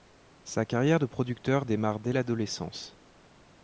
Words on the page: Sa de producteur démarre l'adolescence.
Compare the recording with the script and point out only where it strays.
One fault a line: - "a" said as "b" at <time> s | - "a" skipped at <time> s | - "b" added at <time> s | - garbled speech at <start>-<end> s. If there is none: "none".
- "carrière" added at 0.7 s
- "dès" added at 2.0 s